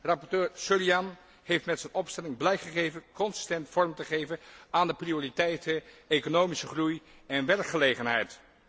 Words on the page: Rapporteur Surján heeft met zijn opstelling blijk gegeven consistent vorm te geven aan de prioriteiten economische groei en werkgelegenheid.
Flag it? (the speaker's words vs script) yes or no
no